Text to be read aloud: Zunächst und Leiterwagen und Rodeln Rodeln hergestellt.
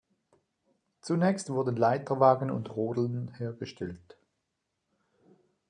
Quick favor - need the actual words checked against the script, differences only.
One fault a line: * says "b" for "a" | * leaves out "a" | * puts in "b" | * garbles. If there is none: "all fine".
* says "wurden" for "und"
* leaves out "Rodeln"